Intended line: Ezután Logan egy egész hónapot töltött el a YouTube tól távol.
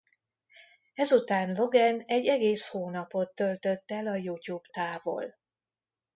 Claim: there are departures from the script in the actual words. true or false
true